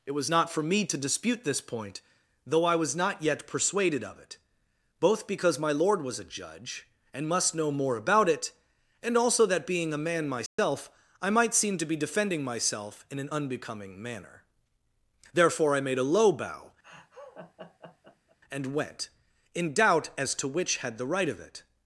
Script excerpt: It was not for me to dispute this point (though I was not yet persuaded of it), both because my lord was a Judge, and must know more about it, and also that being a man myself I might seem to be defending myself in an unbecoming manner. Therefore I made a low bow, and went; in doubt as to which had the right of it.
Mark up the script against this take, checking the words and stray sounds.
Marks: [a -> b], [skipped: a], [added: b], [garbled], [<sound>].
It was not for me to dispute this point (though I was not yet persuaded of it), both because my lord was a Judge, and must know more about it, and also that being a man myself [dropout] I might seem to be defending myself in an unbecoming manner. Therefore I made a low bow, [laugh] and went; in doubt as to which had the right of it.